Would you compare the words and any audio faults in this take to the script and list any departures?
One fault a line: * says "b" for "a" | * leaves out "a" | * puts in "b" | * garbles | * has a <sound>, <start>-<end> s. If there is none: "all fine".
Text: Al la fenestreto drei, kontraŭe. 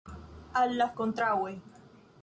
* leaves out "fenestreto drei"